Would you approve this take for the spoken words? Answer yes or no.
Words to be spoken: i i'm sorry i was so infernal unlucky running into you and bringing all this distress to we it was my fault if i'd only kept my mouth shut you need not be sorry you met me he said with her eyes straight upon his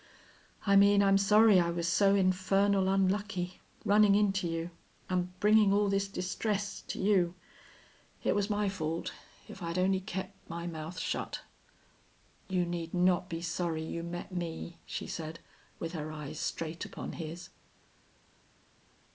no